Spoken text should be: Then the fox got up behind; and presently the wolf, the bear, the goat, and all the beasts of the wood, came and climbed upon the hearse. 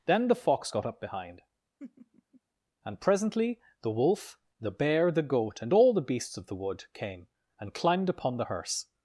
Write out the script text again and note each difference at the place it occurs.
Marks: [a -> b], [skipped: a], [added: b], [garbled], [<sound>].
Then the fox got up behind; [laugh] and presently the wolf, the bear, the goat, and all the beasts of the wood, came and climbed upon the hearse.